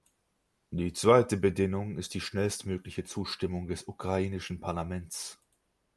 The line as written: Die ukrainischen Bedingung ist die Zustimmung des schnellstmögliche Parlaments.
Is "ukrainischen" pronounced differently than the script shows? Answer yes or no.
yes